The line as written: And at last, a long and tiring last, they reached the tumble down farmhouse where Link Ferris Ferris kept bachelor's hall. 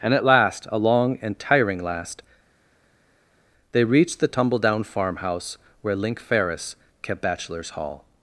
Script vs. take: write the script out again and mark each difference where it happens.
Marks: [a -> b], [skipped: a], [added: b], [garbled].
And at last, a long and tiring last, they reached the tumble down farmhouse where Link Ferris [skipped: Ferris] kept bachelor's hall.